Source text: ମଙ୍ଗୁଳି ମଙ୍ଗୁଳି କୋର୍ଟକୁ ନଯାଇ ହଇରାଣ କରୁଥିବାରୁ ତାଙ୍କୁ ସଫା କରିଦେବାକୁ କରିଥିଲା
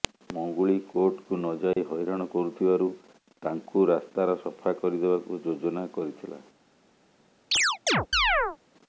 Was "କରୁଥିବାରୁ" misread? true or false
false